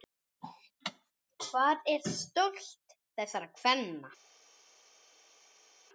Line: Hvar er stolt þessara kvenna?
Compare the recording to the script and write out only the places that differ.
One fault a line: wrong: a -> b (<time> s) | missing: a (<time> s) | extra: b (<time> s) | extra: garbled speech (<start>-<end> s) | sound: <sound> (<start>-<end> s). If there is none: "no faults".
no faults